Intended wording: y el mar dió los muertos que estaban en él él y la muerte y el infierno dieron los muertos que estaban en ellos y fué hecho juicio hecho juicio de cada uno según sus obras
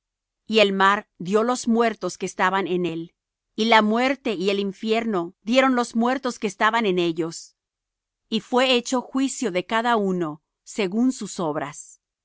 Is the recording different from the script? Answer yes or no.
yes